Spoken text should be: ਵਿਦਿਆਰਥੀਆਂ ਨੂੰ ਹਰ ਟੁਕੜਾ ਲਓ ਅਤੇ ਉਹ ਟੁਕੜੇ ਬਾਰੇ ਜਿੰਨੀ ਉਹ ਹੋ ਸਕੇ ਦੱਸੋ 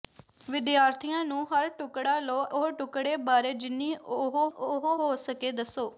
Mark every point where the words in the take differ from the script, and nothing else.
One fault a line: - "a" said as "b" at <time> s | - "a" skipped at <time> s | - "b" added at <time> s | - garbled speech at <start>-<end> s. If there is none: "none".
- "ਅਤੇ" skipped at 2.5 s
- "ਉਹ" added at 4.5 s